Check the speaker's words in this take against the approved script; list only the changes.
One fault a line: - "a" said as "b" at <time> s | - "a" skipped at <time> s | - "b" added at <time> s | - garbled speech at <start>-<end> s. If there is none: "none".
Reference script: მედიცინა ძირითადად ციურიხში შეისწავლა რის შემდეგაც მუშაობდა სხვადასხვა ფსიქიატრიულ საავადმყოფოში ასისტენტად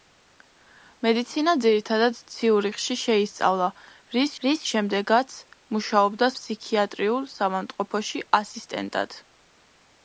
- "რის" added at 4.4 s
- "სხვადასხვა" skipped at 6.3 s